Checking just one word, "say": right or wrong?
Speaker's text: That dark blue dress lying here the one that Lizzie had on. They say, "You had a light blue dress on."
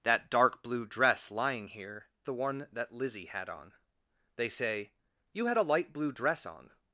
right